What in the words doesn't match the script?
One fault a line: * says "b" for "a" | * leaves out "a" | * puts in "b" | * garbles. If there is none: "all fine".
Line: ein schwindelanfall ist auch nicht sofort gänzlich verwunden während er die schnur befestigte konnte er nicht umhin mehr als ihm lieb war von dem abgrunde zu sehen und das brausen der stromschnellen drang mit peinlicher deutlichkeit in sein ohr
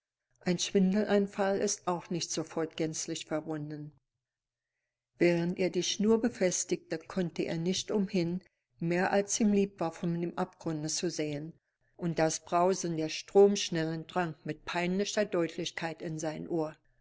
all fine